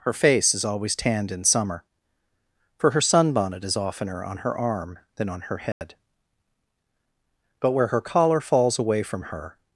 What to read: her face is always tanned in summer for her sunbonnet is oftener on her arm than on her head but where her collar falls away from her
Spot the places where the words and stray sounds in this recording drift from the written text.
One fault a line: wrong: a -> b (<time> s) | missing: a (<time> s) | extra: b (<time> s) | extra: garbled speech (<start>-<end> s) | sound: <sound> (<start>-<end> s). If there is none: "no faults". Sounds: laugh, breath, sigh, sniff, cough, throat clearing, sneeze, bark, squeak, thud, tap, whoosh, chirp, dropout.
sound: dropout (5.7-5.8 s)